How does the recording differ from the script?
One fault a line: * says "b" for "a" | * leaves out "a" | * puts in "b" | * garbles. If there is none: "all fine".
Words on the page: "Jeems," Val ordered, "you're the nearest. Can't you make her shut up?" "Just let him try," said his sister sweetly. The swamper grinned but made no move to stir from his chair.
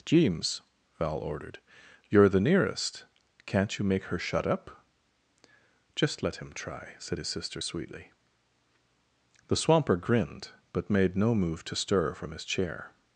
all fine